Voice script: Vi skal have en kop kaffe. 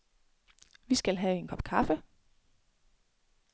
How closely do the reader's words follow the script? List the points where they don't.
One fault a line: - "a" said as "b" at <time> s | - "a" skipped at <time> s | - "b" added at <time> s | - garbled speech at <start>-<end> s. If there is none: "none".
none